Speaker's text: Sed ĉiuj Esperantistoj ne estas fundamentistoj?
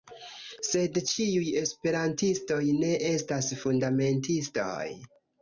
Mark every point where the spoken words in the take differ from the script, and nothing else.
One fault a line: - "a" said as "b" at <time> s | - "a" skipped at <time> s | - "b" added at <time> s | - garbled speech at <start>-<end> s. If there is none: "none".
none